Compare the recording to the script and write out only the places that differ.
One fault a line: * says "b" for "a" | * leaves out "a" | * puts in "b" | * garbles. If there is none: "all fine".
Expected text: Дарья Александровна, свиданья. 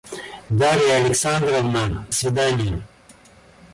all fine